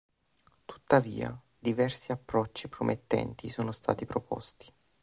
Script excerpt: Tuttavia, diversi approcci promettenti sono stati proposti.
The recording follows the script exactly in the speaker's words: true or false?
true